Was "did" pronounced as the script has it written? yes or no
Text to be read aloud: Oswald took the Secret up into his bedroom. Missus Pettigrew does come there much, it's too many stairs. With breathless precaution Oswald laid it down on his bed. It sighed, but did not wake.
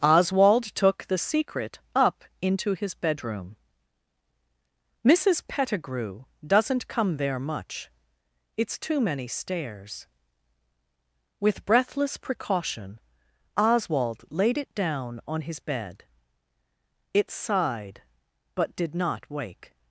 yes